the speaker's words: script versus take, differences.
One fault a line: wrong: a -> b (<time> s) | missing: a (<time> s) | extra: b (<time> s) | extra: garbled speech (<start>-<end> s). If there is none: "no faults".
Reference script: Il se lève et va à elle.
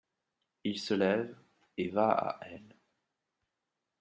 no faults